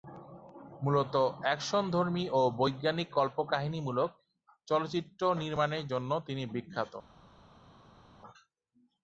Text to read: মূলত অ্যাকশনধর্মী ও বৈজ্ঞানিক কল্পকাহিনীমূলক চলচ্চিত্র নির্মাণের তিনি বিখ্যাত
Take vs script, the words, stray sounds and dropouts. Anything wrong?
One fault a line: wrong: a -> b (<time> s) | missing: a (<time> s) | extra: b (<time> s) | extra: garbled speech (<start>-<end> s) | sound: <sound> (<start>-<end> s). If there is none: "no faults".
extra: জন্য (5.9 s)